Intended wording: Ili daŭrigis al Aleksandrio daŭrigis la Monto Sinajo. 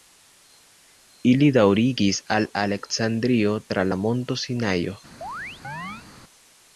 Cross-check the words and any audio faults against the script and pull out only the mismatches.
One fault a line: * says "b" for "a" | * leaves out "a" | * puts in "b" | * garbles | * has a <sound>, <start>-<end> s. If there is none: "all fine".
* says "tra" for "daŭrigis"
* has a chirp, 5.2-6.1 s